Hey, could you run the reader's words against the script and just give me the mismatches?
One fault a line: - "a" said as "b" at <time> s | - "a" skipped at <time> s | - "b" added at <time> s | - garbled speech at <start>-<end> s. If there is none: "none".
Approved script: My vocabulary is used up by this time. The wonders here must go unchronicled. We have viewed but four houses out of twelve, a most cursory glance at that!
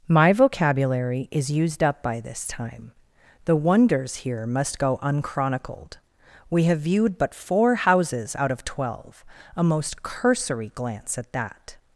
none